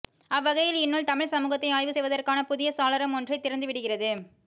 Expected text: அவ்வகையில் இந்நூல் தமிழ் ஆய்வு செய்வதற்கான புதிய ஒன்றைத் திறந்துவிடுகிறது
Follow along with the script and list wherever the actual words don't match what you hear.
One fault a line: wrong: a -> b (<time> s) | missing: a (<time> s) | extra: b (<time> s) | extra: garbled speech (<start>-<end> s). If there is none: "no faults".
extra: சமூகத்தை (1.3 s)
extra: சாளரம் (2.8 s)